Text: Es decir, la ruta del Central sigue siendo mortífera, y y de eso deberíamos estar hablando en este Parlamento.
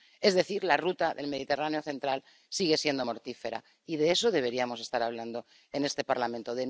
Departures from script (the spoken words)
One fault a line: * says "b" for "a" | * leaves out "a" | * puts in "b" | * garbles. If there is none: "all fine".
* puts in "Mediterráneo"
* leaves out "y"